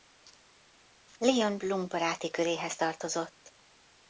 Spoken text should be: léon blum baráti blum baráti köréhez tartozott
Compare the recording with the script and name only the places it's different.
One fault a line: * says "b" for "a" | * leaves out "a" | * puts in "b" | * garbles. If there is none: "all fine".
* leaves out "blum baráti"